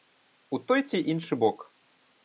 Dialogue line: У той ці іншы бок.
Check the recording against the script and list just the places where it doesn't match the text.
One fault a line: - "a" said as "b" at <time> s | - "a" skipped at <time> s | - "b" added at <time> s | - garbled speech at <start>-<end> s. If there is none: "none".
none